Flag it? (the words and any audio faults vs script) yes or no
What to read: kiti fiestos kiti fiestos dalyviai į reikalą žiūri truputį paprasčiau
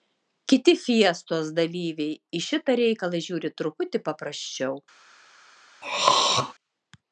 yes